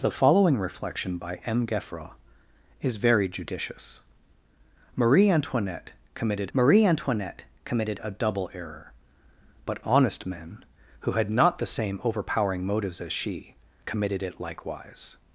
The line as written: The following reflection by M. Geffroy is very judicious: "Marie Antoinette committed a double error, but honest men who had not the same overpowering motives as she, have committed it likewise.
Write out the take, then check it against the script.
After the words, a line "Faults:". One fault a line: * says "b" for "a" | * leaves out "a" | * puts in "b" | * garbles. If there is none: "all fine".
The following reflection by M. Geffroy is very judicious: "Marie Antoinette committed marie Antoinette committed a double error, but honest men who had not the same overpowering motives as she, committed it likewise.
Faults:
* puts in "marie Antoinette committed"
* leaves out "have"